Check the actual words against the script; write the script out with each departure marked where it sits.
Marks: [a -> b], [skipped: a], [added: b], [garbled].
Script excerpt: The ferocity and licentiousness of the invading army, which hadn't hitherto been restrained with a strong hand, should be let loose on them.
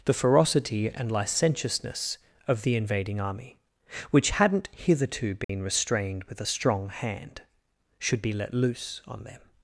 The ferocity and licentiousness of the invading army, which hadn't hitherto been restrained with a strong hand, should be let loose on them.